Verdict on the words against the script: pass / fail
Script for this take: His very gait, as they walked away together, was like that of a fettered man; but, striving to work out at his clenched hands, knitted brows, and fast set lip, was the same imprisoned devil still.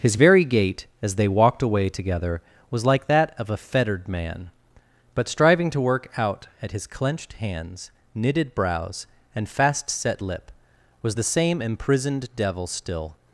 pass